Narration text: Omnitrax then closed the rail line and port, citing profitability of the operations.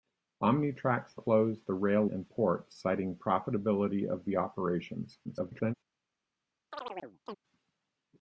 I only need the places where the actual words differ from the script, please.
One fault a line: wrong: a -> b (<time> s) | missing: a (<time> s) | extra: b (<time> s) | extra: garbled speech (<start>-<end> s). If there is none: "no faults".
missing: then (1.1 s)
missing: line (2.1 s)
extra: garbled speech (5.2-5.7 s)